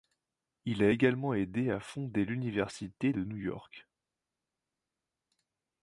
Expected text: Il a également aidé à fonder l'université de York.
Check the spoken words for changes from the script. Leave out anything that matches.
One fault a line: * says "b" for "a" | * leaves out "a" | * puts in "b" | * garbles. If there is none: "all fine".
* puts in "New"